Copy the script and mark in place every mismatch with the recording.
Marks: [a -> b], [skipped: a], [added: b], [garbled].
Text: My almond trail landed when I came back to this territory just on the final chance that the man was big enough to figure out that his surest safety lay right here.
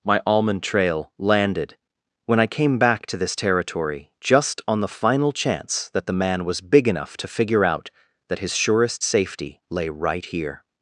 My almond trail landed when I came back to this territory just on the final chance that the man was big enough to figure out that his surest safety lay right here.